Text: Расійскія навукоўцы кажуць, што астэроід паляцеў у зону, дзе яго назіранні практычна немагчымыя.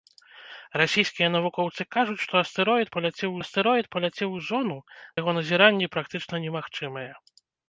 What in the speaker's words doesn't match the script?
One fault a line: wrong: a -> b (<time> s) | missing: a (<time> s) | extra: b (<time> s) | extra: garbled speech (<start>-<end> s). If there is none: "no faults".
extra: астэроід паляцеў (3.4 s)
missing: дзе (4.8 s)